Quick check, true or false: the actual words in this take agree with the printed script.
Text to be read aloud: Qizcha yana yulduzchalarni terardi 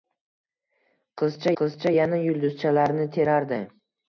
false